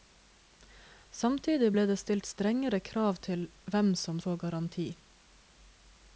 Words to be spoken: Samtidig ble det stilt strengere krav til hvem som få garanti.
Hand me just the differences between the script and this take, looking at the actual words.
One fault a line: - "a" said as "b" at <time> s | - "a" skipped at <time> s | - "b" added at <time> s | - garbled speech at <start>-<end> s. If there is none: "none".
none